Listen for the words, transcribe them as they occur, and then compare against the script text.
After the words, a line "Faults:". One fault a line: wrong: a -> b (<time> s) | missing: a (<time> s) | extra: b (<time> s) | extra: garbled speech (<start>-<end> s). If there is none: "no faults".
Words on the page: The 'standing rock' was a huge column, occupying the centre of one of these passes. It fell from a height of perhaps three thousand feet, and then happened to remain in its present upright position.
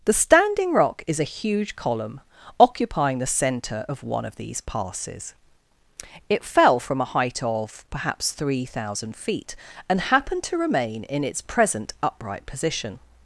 The 'standing rock' is a huge column, occupying the centre of one of these passes. It fell from a height of perhaps three thousand feet, and happened to remain in its present upright position.
Faults:
wrong: was -> is (1.1 s)
missing: then (10.0 s)